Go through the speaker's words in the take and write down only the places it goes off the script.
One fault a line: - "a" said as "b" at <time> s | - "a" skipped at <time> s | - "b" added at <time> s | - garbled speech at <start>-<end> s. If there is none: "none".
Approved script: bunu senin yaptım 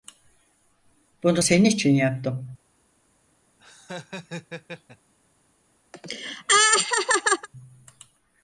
- "için" added at 1.6 s